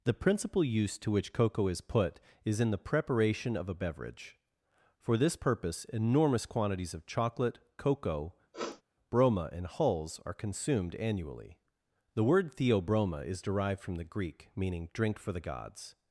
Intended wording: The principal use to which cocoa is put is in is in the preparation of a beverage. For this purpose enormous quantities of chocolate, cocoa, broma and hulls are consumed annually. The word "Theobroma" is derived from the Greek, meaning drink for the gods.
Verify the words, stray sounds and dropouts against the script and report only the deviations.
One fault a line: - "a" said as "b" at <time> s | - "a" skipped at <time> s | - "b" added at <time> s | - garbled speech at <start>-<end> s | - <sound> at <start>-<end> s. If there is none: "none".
- "is in" skipped at 2.7 s
- sniff at 8.5-8.8 s